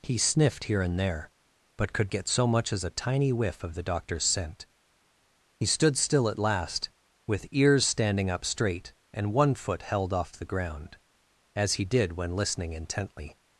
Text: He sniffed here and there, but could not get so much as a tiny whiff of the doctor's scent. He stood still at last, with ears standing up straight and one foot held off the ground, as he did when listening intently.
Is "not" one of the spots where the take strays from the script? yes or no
yes